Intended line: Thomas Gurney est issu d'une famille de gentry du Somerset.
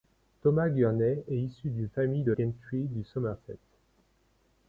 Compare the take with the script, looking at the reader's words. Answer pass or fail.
pass